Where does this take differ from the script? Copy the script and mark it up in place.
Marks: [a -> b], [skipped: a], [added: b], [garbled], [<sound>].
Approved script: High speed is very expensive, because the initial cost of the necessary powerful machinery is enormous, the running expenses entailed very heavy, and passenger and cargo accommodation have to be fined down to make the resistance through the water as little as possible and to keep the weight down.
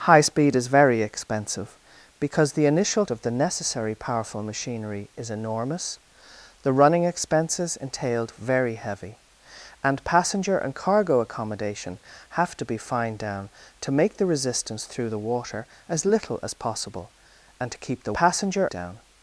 High speed is very expensive, because the initial [skipped: cost] of the necessary powerful machinery is enormous, the running expenses entailed very heavy, and passenger and cargo accommodation have to be fined down to make the resistance through the water as little as possible and to keep the [weight -> passenger] down.